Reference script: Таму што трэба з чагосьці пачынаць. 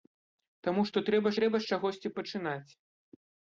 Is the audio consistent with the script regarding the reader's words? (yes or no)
no